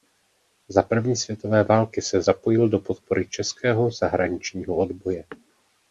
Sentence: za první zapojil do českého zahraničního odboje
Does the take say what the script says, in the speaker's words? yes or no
no